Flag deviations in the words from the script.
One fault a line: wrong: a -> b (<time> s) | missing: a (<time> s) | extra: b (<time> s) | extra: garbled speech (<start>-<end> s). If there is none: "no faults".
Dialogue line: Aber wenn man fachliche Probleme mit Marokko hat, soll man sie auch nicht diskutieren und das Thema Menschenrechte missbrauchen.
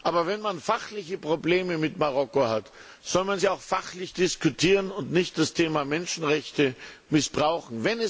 wrong: nicht -> fachlich (3.6 s)
extra: nicht (5.1 s)